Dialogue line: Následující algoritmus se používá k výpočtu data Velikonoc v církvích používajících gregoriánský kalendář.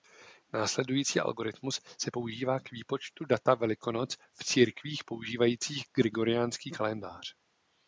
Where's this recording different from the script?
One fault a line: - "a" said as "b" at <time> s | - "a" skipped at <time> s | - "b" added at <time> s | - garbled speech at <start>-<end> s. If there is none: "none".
none